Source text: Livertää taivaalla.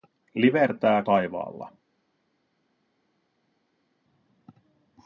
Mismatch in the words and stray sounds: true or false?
false